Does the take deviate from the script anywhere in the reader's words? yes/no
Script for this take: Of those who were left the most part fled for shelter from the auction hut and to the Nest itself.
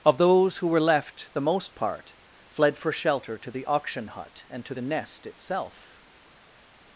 yes